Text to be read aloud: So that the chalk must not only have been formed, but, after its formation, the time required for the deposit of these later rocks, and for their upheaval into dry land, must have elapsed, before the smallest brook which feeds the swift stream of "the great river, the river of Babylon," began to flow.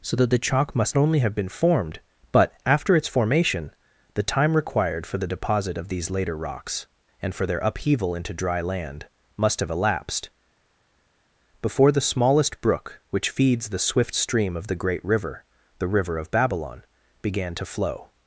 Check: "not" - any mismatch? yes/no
yes